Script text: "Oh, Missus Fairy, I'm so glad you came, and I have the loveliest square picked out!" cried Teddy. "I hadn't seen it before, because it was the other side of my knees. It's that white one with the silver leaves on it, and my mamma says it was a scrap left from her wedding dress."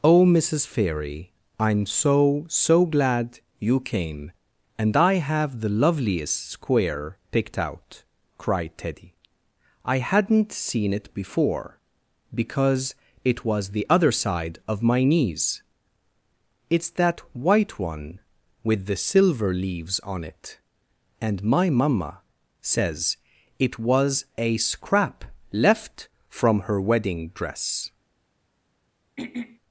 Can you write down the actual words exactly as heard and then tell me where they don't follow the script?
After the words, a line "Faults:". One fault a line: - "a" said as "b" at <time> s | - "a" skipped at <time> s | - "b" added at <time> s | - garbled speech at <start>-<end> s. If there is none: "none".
"Oh, Missus Fairy, I'm so so glad you came, and I have the loveliest square picked out!" cried Teddy. "I hadn't seen it before, because it was the other side of my knees. It's that white one with the silver leaves on it, and my mamma says it was a scrap left from her wedding dress."
Faults:
- "so" added at 2.5 s